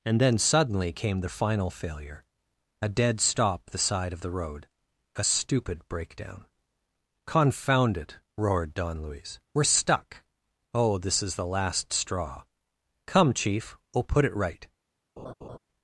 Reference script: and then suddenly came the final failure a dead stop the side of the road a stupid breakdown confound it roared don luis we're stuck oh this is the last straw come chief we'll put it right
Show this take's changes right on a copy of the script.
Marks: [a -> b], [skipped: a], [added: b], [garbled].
and then suddenly came the final failure a dead stop the side of the road a stupid breakdown confound it roared don luis we're stuck oh this is the last straw come chief we'll put it right